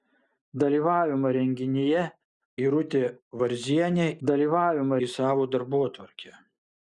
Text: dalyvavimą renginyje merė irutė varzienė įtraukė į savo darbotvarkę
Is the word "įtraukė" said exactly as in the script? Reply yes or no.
no